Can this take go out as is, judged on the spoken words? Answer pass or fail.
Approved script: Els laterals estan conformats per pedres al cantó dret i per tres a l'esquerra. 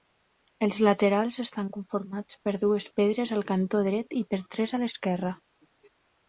fail